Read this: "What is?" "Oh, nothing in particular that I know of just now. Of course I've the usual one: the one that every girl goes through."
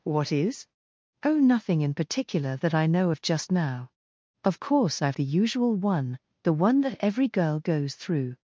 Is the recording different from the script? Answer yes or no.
no